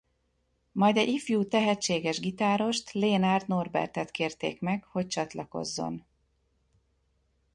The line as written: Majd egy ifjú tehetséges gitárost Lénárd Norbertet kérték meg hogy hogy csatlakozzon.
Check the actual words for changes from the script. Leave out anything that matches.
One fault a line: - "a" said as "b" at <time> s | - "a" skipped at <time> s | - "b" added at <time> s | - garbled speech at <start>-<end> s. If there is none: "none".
- "hogy" skipped at 5.1 s